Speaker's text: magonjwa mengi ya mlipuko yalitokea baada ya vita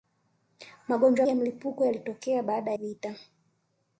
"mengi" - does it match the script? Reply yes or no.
no